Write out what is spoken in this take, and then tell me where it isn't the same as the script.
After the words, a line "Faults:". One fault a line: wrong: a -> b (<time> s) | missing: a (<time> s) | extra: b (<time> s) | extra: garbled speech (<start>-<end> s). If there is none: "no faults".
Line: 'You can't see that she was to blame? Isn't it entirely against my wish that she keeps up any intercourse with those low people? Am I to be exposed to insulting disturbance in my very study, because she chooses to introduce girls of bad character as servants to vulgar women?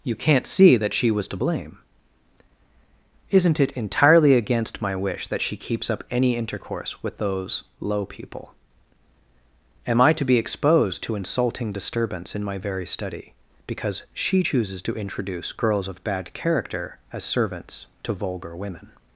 'You can't see that she was to blame? Isn't it entirely against my wish that she keeps up any intercourse with those low people? Am I to be exposed to insulting disturbance in my very study, because she chooses to introduce girls of bad character as servants to vulgar women?
Faults:
no faults